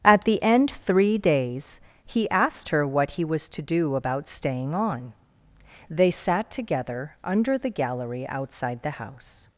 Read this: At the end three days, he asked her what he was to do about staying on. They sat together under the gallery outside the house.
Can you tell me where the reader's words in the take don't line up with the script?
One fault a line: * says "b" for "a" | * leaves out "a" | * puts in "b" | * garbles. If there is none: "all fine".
all fine